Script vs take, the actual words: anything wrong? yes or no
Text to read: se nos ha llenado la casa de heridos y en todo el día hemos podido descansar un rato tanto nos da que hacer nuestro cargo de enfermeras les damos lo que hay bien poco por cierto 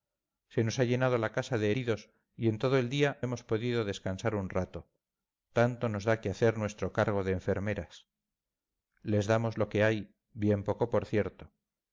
no